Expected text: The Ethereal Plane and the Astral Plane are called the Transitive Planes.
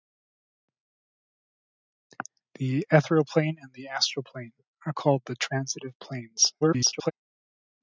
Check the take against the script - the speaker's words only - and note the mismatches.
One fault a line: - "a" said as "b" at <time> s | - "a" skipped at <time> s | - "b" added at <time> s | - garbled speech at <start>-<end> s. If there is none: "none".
- garbled speech at 6.6-7.1 s